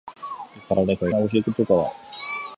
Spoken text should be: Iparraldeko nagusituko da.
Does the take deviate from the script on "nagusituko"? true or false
false